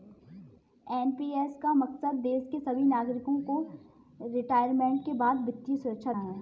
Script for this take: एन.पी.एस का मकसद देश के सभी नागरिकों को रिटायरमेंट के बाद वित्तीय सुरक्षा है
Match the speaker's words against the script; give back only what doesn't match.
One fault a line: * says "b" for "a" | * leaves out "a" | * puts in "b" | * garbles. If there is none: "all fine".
all fine